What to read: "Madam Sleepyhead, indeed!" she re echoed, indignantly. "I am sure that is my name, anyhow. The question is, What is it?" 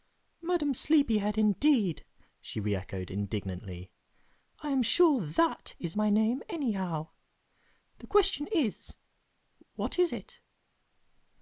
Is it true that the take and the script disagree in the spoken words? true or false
false